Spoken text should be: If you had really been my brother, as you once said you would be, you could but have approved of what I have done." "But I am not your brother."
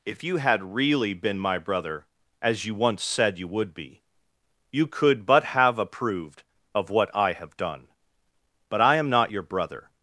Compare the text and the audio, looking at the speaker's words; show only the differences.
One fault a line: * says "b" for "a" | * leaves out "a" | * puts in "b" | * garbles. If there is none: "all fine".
all fine